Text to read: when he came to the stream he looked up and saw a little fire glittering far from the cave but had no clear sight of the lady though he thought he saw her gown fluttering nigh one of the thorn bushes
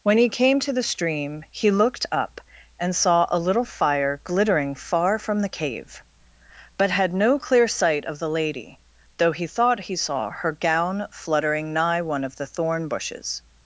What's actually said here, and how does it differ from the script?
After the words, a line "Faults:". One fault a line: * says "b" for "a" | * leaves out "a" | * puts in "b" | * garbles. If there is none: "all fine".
when he came to the stream he looked up and saw a little fire glittering far from the cave but had no clear sight of the lady though he thought he saw her gown fluttering nigh one of the thorn bushes
Faults:
all fine